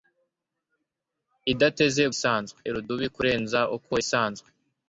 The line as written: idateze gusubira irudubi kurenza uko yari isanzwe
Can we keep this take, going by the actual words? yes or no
no